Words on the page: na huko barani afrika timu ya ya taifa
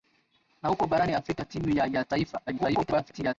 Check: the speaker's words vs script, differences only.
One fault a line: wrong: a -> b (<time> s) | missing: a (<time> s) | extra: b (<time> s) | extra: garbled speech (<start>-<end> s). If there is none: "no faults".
extra: garbled speech (2.5-3.3 s)